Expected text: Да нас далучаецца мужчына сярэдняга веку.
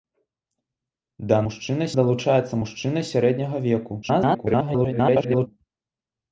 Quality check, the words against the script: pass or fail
fail